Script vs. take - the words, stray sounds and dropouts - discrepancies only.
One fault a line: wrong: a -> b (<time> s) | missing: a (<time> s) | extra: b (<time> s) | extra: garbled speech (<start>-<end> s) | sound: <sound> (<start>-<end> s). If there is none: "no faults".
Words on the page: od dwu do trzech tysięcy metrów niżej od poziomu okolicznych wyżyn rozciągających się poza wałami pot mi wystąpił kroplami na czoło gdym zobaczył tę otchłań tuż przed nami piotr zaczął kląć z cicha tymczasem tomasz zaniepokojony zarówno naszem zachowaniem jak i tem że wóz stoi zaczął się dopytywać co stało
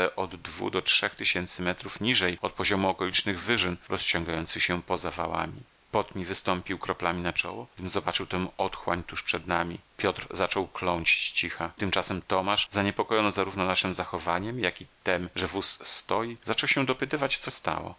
no faults